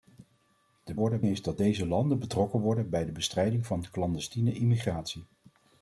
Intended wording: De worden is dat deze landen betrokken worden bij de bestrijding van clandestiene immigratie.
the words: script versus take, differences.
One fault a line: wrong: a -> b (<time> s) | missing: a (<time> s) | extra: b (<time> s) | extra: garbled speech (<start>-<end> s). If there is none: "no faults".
no faults